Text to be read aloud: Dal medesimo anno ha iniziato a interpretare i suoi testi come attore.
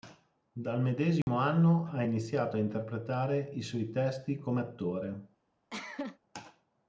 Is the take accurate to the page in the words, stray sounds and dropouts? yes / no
no